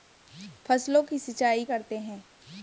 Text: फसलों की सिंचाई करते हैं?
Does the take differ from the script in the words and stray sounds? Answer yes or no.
no